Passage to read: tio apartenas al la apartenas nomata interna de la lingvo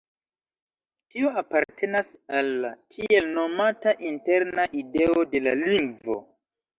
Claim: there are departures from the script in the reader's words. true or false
true